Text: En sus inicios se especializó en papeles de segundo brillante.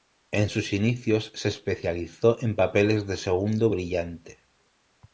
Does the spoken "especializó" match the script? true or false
true